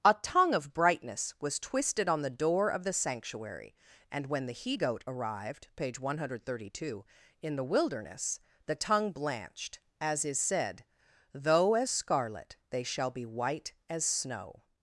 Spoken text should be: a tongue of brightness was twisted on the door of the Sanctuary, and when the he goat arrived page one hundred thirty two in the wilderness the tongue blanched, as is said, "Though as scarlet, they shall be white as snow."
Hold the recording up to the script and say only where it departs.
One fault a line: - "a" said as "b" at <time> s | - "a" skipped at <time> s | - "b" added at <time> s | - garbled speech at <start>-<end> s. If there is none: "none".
none